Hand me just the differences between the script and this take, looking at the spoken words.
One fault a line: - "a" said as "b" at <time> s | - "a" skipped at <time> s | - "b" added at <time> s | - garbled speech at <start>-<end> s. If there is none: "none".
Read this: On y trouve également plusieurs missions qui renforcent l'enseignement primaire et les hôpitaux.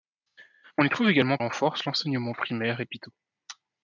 - "plusieurs missions qui" skipped at 1.4 s
- "les" skipped at 2.8 s